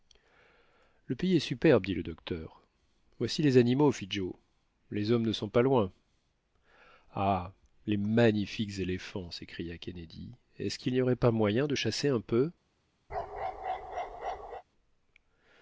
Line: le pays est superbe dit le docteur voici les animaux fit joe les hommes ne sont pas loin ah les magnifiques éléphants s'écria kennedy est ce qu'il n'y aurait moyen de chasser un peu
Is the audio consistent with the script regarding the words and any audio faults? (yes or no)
no